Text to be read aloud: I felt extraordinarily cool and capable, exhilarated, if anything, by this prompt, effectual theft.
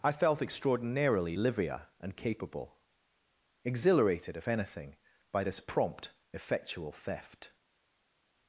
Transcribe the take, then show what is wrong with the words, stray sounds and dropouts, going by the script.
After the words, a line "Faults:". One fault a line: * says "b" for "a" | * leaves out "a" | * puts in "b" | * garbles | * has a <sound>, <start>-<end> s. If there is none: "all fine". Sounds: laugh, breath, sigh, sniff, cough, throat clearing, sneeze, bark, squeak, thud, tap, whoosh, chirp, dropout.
I felt extraordinarily livia and capable, exhilarated, if anything, by this prompt, effectual theft.
Faults:
* says "livia" for "cool"